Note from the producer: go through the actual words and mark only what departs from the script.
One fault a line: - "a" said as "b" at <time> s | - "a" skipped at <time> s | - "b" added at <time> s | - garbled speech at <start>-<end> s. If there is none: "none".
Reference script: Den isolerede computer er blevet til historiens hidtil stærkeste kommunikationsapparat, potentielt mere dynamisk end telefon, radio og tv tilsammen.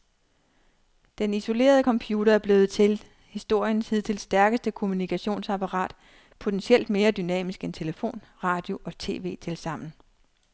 none